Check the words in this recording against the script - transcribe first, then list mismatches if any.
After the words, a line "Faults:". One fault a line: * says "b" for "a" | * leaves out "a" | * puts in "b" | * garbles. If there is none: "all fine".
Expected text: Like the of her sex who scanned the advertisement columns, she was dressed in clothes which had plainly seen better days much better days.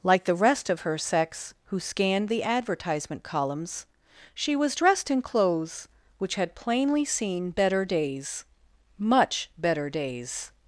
Like the rest of her sex who scanned the advertisement columns, she was dressed in clothes which had plainly seen better days much better days.
Faults:
* puts in "rest"